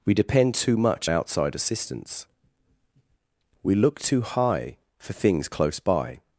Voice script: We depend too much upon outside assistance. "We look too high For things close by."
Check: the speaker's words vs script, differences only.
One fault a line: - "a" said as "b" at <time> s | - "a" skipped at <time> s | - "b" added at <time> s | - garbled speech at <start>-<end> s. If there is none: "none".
- "upon" skipped at 1.1 s